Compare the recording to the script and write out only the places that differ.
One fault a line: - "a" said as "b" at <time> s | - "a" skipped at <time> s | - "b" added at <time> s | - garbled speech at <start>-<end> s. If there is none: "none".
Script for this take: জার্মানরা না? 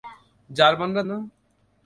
none